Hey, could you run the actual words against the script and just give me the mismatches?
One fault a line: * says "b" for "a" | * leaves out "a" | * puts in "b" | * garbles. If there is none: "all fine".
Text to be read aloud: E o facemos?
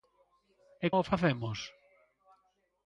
all fine